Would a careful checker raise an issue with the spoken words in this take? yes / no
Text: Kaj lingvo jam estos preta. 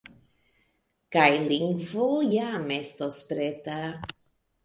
no